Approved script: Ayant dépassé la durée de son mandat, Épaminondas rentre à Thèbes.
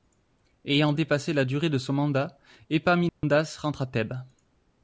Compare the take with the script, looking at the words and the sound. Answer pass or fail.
fail